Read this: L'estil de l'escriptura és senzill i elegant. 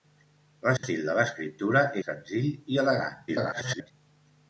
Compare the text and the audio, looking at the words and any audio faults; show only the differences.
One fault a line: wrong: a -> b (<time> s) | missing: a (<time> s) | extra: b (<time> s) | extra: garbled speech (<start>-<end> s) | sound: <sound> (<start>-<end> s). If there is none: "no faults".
sound: dropout (0.8-0.8 s)
missing: és (1.8 s)
extra: garbled speech (3.3-3.9 s)